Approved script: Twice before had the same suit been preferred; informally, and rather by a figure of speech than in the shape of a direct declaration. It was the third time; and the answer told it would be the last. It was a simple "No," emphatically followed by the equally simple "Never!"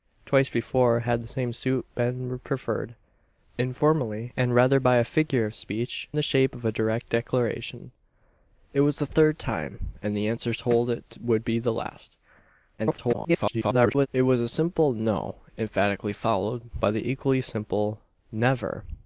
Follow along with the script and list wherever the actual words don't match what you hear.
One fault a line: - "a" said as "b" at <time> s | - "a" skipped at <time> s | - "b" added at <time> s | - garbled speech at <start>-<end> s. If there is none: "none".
- "than in" skipped at 6.1 s
- garbled speech at 12.8-14.1 s